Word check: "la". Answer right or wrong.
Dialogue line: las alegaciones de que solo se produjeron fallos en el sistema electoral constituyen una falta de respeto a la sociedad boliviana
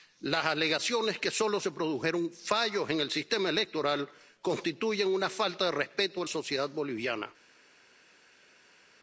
wrong